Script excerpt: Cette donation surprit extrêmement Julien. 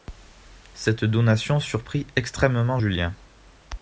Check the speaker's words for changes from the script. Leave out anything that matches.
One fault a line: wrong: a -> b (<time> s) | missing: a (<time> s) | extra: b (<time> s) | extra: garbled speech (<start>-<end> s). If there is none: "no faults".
no faults